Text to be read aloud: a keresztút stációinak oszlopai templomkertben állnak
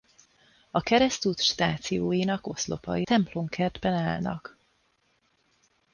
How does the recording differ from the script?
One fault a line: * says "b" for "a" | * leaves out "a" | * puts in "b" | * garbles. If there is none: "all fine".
all fine